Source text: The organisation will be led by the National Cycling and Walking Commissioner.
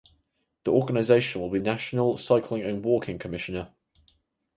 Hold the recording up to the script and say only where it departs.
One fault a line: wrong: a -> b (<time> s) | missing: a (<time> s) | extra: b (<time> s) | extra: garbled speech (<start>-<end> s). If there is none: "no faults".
missing: led by the (1.6 s)